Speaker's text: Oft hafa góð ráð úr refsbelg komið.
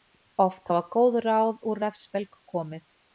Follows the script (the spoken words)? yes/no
yes